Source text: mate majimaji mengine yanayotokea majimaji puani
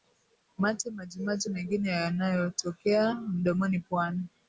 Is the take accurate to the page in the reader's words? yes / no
no